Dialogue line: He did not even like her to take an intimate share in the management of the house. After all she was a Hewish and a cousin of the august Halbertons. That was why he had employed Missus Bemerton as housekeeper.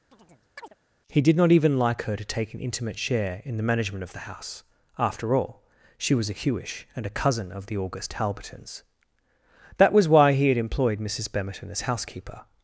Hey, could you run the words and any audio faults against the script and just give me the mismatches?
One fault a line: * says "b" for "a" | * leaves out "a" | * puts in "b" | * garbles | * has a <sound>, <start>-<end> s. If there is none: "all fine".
* has a chirp, 0.1-0.8 s